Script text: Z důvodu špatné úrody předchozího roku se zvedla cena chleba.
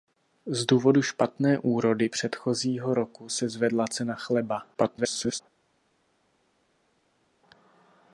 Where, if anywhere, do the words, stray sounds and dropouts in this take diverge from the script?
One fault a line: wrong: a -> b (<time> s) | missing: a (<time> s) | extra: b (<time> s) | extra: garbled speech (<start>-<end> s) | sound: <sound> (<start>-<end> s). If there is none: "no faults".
extra: garbled speech (4.7-5.4 s)